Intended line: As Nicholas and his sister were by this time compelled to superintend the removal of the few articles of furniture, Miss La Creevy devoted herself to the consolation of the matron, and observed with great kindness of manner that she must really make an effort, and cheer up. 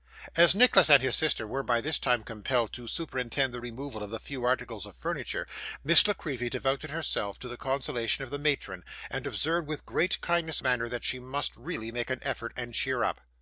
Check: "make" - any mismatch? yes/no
no